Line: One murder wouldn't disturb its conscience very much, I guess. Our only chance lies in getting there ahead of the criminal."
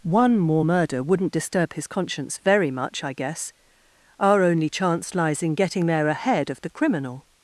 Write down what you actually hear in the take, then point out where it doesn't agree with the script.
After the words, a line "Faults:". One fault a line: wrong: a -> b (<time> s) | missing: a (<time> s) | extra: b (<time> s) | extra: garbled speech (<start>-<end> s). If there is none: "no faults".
One more murder wouldn't disturb his conscience very much, I guess. Our only chance lies in getting there ahead of the criminal."
Faults:
extra: more (0.4 s)
wrong: its -> his (1.7 s)